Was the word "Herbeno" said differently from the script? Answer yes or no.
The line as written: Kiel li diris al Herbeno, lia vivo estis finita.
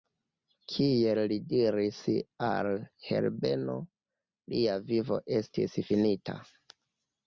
no